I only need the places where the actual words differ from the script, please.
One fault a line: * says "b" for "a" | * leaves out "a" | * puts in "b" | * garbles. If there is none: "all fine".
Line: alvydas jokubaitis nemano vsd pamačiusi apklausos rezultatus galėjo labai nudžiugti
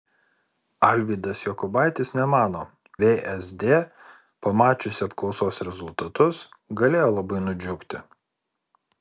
all fine